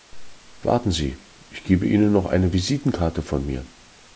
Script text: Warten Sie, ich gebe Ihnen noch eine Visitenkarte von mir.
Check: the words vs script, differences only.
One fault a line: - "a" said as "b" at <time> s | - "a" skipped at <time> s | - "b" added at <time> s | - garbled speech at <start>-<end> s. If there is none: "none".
none